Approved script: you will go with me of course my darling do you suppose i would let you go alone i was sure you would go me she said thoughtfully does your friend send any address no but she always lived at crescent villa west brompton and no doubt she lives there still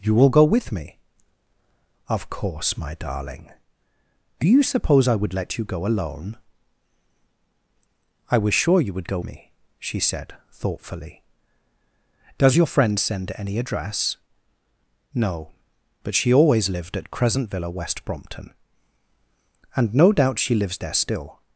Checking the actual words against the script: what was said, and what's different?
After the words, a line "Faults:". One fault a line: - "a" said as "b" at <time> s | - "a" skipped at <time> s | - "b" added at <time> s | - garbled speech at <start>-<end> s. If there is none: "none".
you will go with me of course my darling do you suppose i would let you go alone i was sure you would go me she said thoughtfully does your friend send any address no but she always lived at crescent villa west brompton and no doubt she lives there still
Faults:
none